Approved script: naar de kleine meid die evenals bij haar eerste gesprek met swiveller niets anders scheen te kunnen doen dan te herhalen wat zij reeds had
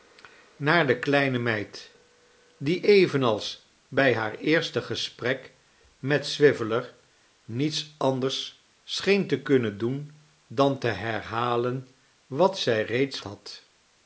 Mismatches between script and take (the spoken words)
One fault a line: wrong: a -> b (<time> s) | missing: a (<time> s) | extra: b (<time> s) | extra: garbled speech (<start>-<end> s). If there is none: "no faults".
no faults